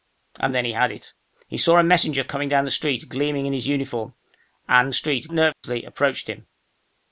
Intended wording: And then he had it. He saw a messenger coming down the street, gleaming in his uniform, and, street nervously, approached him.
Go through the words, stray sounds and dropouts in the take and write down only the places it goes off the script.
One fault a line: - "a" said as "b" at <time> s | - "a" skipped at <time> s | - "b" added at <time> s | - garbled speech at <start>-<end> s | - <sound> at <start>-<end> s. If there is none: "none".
- dropout at 5.5-5.6 s